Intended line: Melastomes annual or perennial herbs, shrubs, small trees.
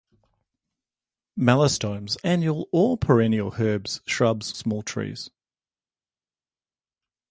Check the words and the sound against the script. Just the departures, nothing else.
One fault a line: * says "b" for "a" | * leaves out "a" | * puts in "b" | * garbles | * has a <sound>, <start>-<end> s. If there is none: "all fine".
all fine